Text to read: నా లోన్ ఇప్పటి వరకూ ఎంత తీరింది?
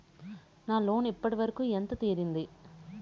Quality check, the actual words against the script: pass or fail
pass